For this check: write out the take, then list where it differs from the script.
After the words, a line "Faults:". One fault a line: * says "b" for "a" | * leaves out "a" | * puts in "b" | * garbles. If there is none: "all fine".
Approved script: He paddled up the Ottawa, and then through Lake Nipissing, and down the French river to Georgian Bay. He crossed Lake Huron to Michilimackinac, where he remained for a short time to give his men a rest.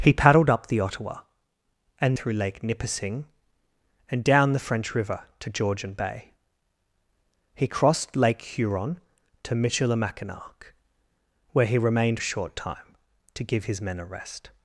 He paddled up the Ottawa, and through Lake Nipissing, and down the French river to Georgian Bay. He crossed Lake Huron to Michilimackinac, where he remained a short time to give his men a rest.
Faults:
* leaves out "then"
* leaves out "for"